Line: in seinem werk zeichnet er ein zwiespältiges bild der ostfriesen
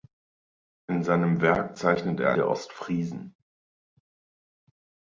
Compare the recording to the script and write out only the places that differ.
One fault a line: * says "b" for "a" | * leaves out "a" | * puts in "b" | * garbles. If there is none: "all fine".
* leaves out "ein zwiespältiges bild"